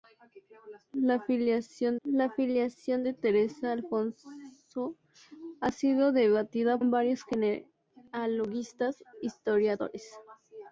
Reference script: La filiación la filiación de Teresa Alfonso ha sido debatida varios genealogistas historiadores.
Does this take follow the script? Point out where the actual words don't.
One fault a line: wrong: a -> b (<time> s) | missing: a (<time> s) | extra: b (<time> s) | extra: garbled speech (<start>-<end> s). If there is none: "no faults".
no faults